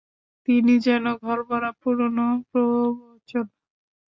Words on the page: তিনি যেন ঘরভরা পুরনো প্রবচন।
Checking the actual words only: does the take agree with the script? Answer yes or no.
yes